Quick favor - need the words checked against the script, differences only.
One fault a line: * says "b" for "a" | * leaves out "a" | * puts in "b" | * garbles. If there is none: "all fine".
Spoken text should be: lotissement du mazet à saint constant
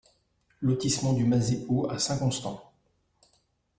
* puts in "haut"